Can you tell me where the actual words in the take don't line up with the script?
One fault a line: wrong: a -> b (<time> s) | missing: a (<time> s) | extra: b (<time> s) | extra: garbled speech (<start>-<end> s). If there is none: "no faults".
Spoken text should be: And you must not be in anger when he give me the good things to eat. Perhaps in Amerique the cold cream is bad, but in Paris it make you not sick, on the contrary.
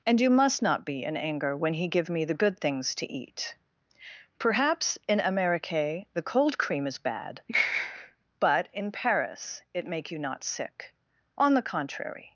no faults